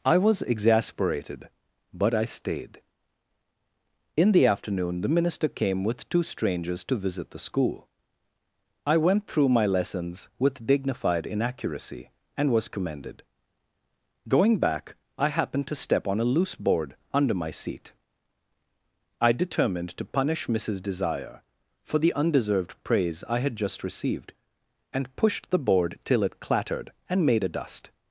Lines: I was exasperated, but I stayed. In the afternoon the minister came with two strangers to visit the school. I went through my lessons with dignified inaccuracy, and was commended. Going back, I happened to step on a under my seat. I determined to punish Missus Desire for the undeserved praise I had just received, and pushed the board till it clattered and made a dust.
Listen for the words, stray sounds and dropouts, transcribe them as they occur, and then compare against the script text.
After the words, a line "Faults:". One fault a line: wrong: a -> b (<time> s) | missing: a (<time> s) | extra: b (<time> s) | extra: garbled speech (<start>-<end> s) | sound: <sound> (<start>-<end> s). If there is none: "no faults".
I was exasperated, but I stayed. In the afternoon the minister came with two strangers to visit the school. I went through my lessons with dignified inaccuracy, and was commended. Going back, I happened to step on a loose board under my seat. I determined to punish Missus Desire for the undeserved praise I had just received, and pushed the board till it clattered and made a dust.
Faults:
extra: loose board (16.3 s)